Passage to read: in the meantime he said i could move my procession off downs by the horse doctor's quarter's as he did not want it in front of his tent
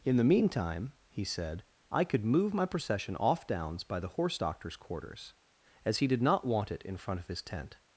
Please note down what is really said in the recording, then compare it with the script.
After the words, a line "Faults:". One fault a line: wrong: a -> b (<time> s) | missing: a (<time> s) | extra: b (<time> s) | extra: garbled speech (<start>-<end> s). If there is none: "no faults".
in the meantime he said i could move my procession off downs by the horse doctor's quarter's as he did not want it in front of his tent
Faults:
no faults